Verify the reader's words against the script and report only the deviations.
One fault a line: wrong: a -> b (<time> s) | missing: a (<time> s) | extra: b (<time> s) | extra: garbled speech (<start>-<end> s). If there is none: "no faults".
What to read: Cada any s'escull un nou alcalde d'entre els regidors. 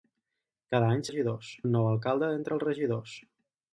wrong: s'escull -> regidors (1.1 s)